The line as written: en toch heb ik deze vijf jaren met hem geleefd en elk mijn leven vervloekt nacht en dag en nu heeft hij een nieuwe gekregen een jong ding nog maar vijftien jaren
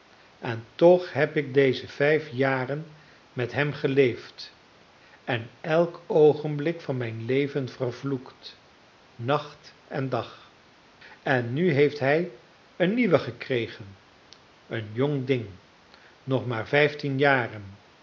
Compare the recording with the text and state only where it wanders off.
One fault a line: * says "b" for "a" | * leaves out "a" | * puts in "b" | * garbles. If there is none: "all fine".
* puts in "oogenblik van"